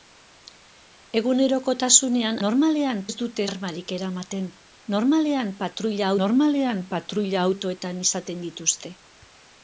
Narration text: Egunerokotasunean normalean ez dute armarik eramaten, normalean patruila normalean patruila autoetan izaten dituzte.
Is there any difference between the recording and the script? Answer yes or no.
no